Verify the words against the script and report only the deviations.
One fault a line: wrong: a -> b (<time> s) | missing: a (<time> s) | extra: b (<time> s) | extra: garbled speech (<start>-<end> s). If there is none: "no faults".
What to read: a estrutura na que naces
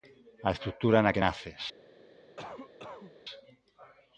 no faults